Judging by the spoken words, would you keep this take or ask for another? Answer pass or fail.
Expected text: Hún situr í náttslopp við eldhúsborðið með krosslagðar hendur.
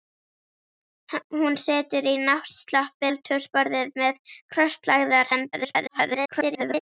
fail